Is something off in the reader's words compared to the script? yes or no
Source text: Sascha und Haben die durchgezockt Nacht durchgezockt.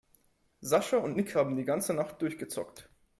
yes